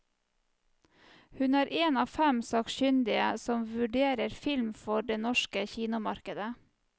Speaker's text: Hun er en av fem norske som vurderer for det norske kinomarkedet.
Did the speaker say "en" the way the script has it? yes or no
yes